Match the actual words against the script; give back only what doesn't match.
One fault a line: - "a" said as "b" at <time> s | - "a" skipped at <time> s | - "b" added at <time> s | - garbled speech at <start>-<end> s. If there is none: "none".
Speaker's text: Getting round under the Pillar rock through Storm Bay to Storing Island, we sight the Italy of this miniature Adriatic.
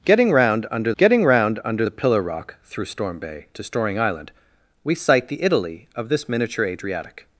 - "getting round under" added at 1.0 s